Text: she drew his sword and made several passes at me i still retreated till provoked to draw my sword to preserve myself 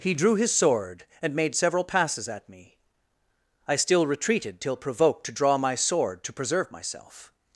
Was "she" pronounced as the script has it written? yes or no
no